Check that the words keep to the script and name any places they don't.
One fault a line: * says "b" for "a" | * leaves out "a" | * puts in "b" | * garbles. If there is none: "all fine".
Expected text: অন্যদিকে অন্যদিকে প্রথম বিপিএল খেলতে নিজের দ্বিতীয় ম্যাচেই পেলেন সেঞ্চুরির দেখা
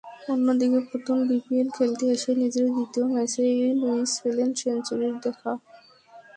* leaves out "অন্যদিকে"
* puts in "এসে"
* puts in "লুইস"